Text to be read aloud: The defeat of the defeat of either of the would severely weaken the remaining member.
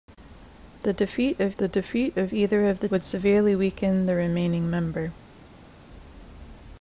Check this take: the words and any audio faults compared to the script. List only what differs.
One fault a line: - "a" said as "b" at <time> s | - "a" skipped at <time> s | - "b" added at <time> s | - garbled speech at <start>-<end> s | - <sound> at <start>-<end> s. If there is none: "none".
none